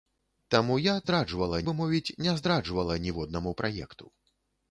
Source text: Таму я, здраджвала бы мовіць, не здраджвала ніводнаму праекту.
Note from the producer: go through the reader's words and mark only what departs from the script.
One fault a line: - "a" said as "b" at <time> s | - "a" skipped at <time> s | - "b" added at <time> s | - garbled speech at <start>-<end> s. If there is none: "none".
none